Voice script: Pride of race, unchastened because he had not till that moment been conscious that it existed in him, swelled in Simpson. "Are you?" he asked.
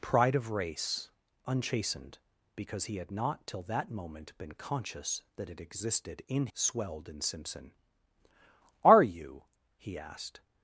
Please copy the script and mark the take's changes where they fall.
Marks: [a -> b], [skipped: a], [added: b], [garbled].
Pride of race, unchastened because he had not till that moment been conscious that it existed in [skipped: him,] swelled in Simpson. "Are you?" he asked.